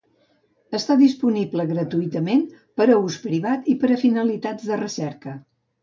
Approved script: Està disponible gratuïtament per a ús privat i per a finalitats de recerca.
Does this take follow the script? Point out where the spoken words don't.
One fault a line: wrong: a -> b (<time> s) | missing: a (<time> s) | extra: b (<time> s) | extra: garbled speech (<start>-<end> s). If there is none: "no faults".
no faults